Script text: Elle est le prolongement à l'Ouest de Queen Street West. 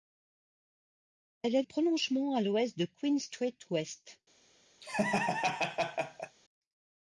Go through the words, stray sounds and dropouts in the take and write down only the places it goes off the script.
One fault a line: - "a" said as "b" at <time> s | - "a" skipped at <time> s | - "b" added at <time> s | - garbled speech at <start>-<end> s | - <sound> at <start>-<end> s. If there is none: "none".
- "le" skipped at 1.6 s
- laugh at 4.8-6.4 s